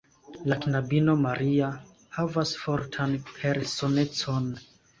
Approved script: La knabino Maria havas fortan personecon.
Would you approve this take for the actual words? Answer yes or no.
yes